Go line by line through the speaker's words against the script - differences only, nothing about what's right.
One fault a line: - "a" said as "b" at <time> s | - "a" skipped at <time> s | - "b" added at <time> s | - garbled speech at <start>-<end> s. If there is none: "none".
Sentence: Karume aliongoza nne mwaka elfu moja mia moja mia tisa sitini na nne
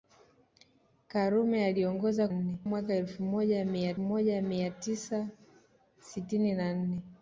none